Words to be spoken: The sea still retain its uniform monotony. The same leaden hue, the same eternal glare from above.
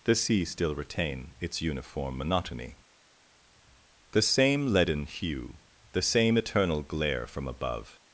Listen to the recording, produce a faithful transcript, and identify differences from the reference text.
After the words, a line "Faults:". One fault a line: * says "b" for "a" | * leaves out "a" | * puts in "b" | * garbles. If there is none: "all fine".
The sea still retain its uniform monotony. The same leaden hue, the same eternal glare from above.
Faults:
all fine